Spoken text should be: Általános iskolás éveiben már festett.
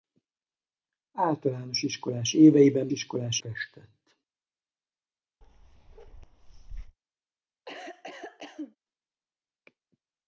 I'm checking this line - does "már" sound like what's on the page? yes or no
no